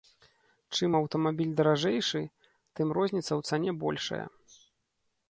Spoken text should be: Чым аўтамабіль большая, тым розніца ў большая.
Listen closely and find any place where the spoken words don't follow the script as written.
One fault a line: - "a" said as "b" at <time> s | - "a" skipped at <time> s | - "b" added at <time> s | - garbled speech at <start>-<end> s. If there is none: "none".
- "большая" said as "даражэйшы" at 1.6 s
- "цане" added at 3.5 s